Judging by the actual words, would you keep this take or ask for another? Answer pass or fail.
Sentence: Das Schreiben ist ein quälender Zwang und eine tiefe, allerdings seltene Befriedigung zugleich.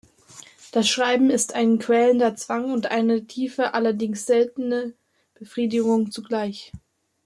pass